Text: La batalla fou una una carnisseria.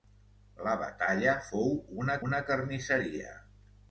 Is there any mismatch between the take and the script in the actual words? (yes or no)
no